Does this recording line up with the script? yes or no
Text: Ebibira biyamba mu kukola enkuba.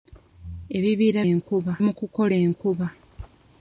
no